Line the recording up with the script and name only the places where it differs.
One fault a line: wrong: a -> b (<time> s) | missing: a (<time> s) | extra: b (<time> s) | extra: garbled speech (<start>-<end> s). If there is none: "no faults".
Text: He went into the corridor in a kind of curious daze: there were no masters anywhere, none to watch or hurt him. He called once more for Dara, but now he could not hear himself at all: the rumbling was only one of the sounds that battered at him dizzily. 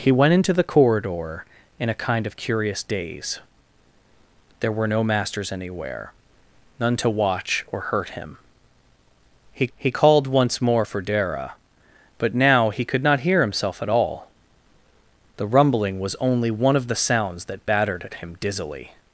extra: he (9.8 s)